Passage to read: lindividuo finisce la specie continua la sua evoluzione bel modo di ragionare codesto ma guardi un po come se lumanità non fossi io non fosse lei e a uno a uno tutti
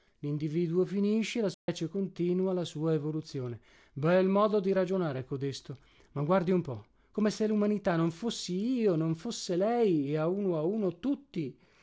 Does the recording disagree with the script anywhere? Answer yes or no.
no